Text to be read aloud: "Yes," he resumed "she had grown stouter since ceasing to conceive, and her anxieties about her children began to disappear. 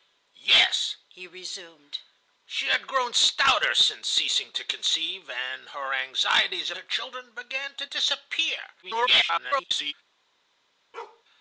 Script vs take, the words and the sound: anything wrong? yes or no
yes